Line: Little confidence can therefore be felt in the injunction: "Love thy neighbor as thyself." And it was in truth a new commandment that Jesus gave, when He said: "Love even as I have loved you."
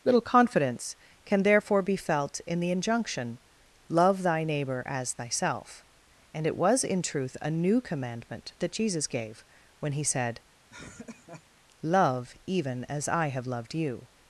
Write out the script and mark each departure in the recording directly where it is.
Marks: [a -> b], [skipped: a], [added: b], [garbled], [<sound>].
Little confidence can therefore be felt in the injunction: "Love thy neighbor as thyself." And it was in truth a new commandment that Jesus gave, when He said: [laugh] "Love even as I have loved you."